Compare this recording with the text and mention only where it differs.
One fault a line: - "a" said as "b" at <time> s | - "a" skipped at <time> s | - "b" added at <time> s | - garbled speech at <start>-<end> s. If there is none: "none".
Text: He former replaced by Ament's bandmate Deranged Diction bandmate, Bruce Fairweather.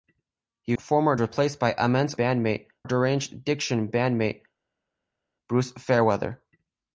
none